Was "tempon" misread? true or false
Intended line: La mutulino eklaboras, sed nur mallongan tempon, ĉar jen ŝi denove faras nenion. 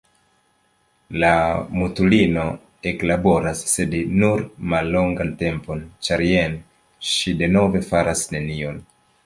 false